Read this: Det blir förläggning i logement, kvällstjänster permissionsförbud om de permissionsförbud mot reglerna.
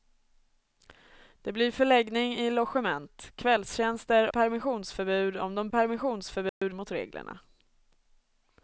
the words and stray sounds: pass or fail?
fail